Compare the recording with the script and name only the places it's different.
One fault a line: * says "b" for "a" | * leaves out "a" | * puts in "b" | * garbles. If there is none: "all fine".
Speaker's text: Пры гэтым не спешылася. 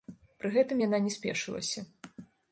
* puts in "яна"